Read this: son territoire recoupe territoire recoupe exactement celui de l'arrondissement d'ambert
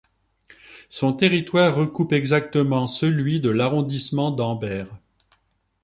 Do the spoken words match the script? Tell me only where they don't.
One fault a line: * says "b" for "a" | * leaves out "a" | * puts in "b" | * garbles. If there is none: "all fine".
* leaves out "territoire recoupe"